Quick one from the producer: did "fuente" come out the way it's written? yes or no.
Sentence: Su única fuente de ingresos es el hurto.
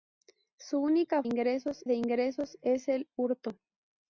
no